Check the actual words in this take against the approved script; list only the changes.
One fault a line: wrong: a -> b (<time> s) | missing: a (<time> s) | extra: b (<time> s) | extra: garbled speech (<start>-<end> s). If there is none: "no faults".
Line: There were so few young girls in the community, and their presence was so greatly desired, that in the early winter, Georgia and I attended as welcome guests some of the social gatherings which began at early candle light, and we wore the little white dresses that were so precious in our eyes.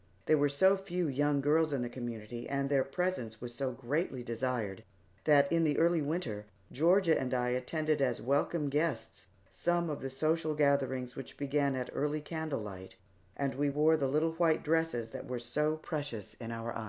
no faults